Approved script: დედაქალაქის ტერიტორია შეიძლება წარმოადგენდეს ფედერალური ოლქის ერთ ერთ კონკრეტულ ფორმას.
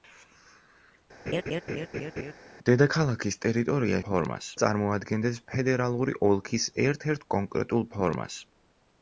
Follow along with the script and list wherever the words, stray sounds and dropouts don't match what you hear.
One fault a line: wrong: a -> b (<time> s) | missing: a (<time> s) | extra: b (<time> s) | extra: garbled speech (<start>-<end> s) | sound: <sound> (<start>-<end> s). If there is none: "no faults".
sound: laugh (1.3-2.3 s)
wrong: შეიძლება -> ფორმას (4.1 s)